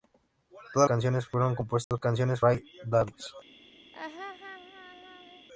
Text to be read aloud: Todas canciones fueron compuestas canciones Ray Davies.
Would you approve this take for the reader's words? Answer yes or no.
yes